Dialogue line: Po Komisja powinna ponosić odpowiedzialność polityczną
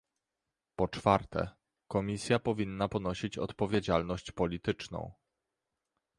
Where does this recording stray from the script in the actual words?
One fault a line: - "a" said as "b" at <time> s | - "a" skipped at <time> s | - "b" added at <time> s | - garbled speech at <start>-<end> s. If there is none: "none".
- "czwarte" added at 0.9 s